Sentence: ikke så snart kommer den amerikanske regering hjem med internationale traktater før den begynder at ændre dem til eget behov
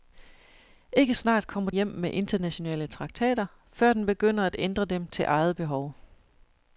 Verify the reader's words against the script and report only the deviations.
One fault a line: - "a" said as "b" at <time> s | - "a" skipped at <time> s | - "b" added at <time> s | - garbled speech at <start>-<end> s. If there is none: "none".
- "så" skipped at 1.1 s
- "den amerikanske regering" skipped at 1.7 s